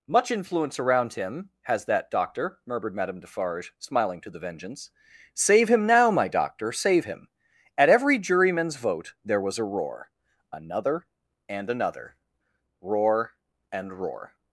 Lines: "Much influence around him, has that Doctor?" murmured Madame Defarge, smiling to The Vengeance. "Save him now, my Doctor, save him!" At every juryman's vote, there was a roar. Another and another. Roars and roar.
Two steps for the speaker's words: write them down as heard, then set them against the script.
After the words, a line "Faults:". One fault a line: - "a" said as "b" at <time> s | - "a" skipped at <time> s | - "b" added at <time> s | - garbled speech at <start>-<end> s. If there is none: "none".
"Much influence around him, has that Doctor?" murmured Madame Defarge, smiling to The Vengeance. "Save him now, my Doctor, save him!" At every juryman's vote, there was a roar. Another and another. Roar and roar.
Faults:
- "Roars" said as "Roar" at 12.8 s